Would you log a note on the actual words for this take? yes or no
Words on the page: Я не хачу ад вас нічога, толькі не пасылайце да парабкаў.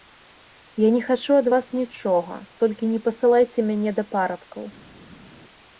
yes